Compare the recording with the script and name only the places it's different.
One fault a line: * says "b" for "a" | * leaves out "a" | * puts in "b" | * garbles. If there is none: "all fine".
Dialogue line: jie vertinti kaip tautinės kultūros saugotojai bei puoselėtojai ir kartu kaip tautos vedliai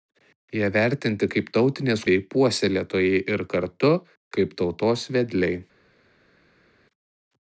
* leaves out "kultūros saugotojai"